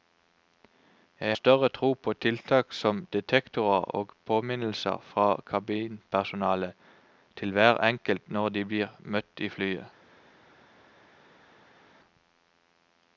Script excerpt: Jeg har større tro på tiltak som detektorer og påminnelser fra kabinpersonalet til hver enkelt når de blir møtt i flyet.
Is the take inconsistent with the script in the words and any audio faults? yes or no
yes